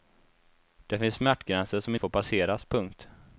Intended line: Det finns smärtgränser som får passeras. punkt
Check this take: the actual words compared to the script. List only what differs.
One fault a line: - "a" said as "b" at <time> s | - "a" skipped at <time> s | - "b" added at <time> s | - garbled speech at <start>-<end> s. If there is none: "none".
none